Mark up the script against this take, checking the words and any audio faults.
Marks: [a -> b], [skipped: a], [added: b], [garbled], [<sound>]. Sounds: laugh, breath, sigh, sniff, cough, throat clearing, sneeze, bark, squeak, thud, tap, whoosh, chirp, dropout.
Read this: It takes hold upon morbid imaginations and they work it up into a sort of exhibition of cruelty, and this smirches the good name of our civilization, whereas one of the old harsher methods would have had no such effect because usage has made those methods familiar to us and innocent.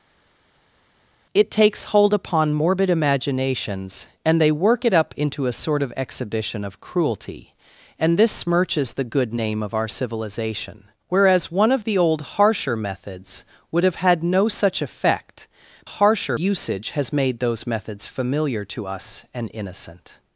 It takes hold upon morbid imaginations and they work it up into a sort of exhibition of cruelty, and this smirches the good name of our civilization, whereas one of the old harsher methods would have had no such effect [because -> harsher] usage has made those methods familiar to us and innocent.